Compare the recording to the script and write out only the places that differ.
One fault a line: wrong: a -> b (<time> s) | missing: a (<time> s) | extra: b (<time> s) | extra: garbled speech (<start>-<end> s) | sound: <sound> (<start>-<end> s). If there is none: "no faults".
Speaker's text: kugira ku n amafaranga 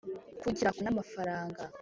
no faults